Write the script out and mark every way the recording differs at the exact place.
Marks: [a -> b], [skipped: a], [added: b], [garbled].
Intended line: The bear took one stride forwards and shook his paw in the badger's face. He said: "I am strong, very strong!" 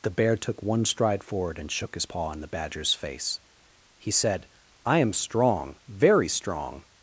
The bear took one stride [forwards -> forward] and shook his paw in the badger's face. He said: "I am strong, very strong!"